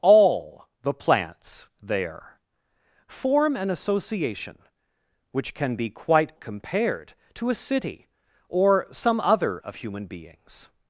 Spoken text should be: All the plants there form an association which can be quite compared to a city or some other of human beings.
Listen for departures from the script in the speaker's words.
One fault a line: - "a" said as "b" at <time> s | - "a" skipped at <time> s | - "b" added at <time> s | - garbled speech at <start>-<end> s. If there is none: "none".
none